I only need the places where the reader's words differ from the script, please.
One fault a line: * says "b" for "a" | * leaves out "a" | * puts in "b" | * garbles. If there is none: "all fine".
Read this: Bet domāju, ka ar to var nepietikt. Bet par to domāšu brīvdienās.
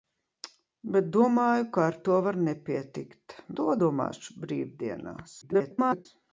* leaves out "Bet par"
* garbles